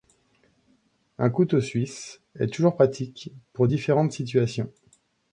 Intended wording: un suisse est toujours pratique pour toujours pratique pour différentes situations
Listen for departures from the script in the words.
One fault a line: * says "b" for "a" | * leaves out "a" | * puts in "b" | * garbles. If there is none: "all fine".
* puts in "couteau"
* leaves out "toujours pratique pour"